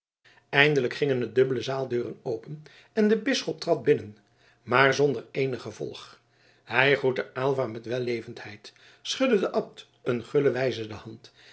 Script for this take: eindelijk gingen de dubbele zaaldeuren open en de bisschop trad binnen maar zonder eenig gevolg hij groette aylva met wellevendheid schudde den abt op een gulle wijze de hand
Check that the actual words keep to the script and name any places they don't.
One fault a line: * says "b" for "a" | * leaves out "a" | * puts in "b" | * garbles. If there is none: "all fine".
* leaves out "op"